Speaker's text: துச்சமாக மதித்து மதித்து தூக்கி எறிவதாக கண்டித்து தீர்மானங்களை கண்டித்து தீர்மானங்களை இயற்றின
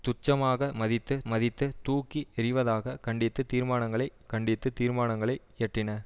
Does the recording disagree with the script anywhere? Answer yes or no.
no